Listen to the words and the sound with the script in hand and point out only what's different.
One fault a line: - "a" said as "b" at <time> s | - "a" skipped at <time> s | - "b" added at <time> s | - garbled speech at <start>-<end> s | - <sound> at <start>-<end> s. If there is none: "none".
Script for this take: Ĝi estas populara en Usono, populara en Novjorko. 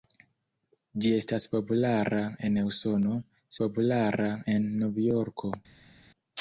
none